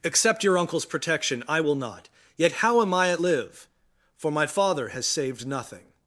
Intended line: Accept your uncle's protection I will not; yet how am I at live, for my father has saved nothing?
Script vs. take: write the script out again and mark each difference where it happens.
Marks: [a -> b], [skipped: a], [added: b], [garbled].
Accept your uncle's protection I will not; yet how am I at live, for my father has saved nothing?